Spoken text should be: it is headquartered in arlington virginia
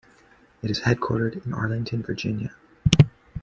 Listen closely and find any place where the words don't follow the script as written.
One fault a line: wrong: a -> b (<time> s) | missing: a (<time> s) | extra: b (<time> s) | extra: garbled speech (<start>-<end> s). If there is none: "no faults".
no faults